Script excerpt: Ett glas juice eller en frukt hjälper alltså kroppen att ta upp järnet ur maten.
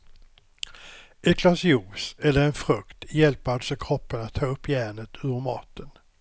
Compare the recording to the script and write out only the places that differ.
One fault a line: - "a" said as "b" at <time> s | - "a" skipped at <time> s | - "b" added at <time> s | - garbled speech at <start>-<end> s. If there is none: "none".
none